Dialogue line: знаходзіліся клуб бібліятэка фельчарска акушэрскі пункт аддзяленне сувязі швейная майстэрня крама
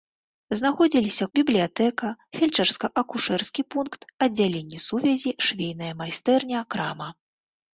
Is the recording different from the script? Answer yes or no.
yes